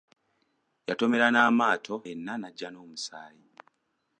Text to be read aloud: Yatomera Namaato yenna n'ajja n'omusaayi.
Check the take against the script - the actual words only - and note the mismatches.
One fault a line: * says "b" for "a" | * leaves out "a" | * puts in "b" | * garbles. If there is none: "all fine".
all fine